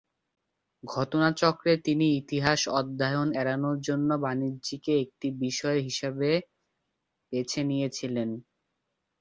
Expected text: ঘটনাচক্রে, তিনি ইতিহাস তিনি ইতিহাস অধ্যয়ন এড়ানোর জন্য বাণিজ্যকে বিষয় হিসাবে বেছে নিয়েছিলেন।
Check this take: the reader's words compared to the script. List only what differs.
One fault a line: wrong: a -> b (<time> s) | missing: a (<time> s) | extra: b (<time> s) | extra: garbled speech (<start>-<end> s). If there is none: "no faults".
missing: তিনি ইতিহাস (2.6 s)
extra: একটি (5.0 s)